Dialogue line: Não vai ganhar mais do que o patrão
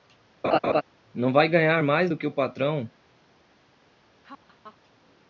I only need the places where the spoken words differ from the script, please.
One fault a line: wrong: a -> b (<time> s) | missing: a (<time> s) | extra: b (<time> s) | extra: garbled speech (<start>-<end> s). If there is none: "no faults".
no faults